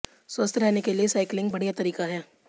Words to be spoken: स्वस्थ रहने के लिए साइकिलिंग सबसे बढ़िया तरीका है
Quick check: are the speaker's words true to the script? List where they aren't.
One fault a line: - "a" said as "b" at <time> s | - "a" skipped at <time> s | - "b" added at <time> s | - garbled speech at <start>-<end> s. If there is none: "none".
- "सबसे" skipped at 1.5 s